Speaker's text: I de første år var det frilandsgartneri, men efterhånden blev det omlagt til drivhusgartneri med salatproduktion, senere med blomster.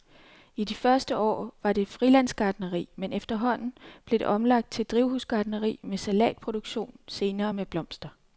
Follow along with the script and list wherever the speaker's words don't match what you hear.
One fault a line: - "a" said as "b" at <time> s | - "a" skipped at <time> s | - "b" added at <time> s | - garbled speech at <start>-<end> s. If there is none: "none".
none